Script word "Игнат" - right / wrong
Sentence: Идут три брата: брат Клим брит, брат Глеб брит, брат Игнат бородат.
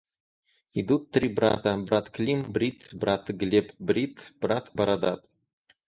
wrong